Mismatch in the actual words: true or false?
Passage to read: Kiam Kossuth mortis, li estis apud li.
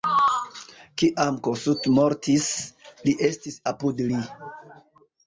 false